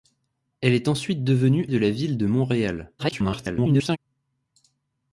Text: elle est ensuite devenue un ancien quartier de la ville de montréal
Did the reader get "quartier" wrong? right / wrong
wrong